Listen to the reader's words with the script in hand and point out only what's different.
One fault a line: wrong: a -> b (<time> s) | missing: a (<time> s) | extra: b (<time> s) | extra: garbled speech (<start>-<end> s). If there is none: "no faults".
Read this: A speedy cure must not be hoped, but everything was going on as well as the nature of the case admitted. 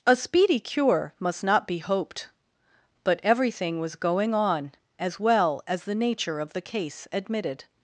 no faults